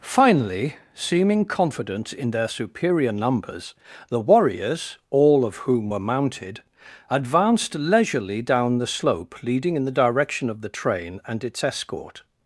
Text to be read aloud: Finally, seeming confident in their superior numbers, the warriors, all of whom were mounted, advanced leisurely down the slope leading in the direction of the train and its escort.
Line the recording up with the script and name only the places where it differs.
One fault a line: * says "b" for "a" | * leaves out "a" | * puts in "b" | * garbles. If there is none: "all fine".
all fine